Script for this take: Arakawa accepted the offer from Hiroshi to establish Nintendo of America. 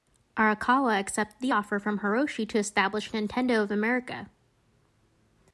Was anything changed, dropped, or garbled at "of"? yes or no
no